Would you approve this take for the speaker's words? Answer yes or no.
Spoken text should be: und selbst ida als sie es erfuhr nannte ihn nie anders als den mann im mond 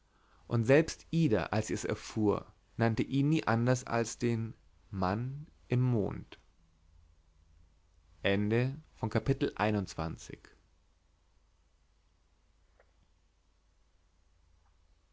yes